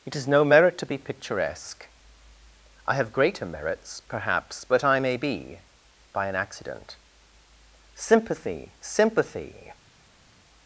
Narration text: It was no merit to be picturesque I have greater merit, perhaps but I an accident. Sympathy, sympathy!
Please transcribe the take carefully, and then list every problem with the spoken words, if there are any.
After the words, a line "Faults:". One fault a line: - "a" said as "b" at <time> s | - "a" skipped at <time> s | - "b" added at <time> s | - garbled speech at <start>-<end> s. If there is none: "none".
It is no merit to be picturesque I have greater merits, perhaps but I may be, by an accident. Sympathy, sympathy!
Faults:
- "was" said as "is" at 0.1 s
- "merit" said as "merits" at 3.5 s
- "may be by" added at 5.0 s